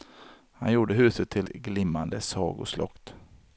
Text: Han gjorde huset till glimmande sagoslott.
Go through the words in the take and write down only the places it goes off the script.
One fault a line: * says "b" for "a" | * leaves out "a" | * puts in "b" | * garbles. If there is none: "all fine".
all fine